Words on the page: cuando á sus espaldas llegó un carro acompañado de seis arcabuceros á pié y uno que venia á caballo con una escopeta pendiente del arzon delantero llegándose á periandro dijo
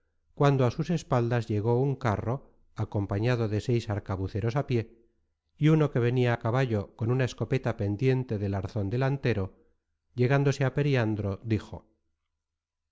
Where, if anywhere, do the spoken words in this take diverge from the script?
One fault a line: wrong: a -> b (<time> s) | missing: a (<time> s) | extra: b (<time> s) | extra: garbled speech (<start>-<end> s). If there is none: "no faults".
no faults